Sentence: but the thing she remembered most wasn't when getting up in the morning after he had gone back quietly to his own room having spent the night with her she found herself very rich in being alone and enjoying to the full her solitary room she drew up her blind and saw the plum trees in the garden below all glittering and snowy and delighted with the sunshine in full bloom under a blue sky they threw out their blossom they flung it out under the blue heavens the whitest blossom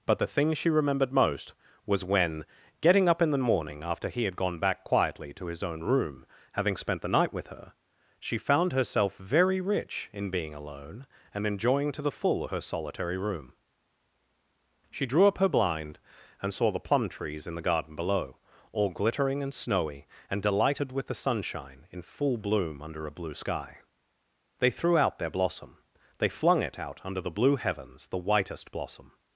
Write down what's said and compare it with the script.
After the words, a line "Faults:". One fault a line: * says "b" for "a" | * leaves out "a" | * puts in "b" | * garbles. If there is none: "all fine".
but the thing she remembered most was when getting up in the morning after he had gone back quietly to his own room having spent the night with her she found herself very rich in being alone and enjoying to the full her solitary room she drew up her blind and saw the plum trees in the garden below all glittering and snowy and delighted with the sunshine in full bloom under a blue sky they threw out their blossom they flung it out under the blue heavens the whitest blossom
Faults:
* says "was" for "wasn't"